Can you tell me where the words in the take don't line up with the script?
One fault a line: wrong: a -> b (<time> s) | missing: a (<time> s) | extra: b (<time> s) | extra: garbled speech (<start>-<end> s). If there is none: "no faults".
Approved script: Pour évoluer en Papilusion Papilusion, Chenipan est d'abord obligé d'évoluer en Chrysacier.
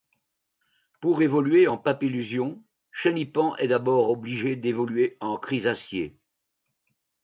missing: Papilusion (2.6 s)